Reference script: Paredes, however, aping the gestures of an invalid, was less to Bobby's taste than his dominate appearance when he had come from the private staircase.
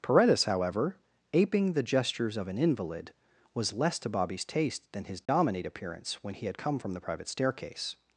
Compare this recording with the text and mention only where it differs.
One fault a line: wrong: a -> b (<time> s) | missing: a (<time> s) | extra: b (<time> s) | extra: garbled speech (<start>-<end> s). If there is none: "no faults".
no faults